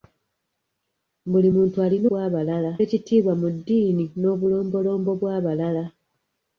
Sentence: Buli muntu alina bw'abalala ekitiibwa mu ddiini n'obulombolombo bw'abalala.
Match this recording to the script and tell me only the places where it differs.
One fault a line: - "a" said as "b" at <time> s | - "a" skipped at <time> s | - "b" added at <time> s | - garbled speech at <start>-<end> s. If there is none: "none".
none